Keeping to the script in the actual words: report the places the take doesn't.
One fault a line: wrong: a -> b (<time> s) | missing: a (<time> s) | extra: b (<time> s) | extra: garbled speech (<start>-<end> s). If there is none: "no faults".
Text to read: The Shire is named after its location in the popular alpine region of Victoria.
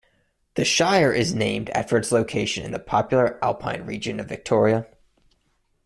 no faults